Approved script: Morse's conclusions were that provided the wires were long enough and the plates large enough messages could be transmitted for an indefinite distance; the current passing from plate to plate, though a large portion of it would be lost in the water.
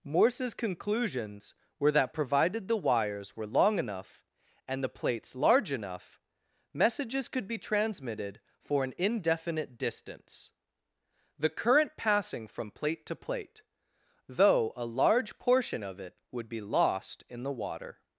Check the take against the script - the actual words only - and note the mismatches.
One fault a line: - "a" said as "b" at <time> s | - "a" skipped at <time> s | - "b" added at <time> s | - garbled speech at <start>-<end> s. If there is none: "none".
none